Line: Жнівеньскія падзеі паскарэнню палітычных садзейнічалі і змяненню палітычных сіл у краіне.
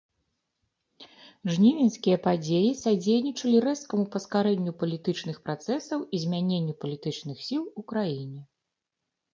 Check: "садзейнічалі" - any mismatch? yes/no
yes